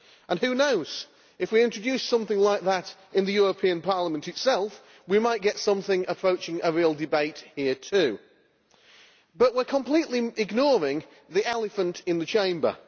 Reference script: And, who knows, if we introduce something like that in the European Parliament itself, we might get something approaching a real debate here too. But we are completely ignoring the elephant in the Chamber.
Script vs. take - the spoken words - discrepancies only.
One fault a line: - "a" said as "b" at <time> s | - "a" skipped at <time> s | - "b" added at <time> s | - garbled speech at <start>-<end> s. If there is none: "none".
none